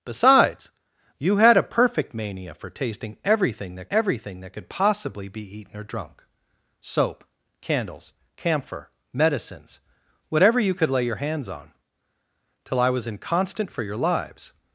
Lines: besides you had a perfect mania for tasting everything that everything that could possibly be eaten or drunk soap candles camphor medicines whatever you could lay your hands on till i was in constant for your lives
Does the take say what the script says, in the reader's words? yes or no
yes